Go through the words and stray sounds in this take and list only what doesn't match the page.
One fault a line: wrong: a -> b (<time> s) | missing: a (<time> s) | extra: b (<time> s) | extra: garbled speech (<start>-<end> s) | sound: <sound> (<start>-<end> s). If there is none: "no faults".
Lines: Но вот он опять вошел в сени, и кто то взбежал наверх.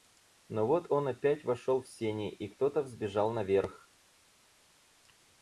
no faults